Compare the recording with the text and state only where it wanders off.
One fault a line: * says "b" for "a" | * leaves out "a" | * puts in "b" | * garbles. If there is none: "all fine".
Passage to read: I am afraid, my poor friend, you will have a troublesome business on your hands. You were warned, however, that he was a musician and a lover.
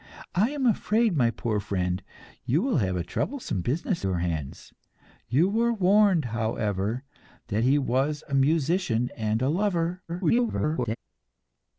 * leaves out "on"
* garbles